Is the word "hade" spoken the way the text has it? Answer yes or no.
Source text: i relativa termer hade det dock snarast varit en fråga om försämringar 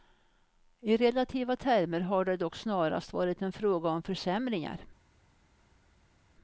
no